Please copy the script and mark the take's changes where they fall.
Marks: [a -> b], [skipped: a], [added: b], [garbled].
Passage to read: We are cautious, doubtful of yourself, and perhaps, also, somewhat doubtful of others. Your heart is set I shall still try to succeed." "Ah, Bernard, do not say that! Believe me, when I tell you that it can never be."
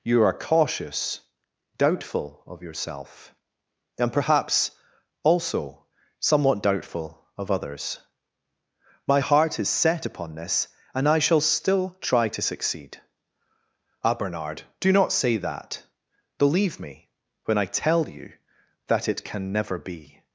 [We -> You] are cautious, doubtful of yourself, and perhaps, also, somewhat doubtful of others. [Your -> My] heart is set [added: upon this and] I shall still try to succeed." "Ah, Bernard, do not say that! Believe me, when I tell you that it can never be."